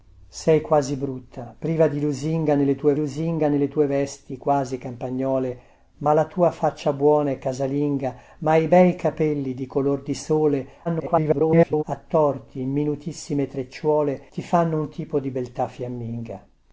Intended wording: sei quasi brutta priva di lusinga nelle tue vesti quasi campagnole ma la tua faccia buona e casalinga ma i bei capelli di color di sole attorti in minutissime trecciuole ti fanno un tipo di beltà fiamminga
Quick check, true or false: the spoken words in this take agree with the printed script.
false